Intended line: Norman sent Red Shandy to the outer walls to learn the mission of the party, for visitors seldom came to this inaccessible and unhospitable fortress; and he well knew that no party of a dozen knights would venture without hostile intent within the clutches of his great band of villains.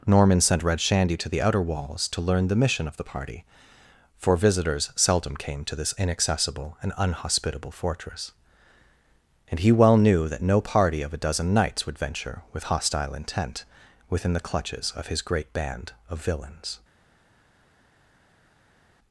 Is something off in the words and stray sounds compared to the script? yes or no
yes